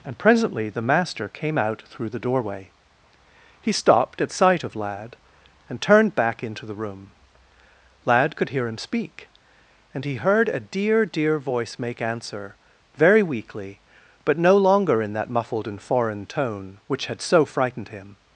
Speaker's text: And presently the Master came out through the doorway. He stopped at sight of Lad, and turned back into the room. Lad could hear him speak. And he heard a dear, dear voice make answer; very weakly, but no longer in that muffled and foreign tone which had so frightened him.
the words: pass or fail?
pass